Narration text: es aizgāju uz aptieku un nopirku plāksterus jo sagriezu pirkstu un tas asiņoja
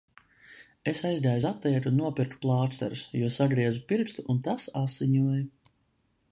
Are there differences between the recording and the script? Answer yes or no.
no